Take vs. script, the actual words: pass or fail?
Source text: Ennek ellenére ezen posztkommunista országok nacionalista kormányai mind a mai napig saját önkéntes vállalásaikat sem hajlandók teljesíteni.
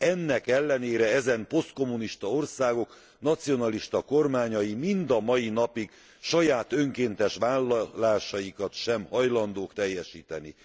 pass